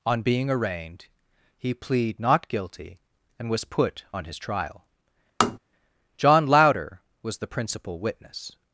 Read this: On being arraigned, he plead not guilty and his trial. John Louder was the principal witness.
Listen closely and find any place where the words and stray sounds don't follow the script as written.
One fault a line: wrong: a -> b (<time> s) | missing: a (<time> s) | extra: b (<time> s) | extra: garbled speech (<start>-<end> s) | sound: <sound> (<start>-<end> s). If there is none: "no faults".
extra: was put on (3.5 s)
sound: tap (5.4-5.6 s)